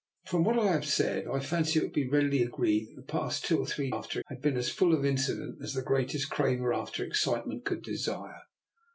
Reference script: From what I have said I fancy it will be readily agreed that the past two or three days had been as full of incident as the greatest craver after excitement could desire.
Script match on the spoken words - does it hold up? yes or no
no